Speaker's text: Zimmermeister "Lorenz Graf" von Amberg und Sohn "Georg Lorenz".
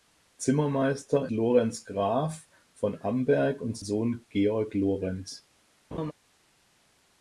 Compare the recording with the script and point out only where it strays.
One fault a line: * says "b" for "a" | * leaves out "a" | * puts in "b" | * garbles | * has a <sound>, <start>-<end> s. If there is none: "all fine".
* has a laugh, 5.9-6.1 s